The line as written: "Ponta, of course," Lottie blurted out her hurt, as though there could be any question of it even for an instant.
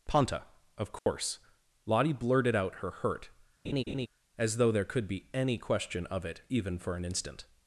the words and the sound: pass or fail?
fail